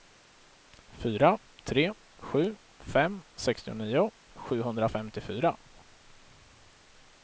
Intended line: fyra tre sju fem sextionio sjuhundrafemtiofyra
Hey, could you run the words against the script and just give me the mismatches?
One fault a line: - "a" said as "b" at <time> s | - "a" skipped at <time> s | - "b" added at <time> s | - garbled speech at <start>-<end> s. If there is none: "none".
none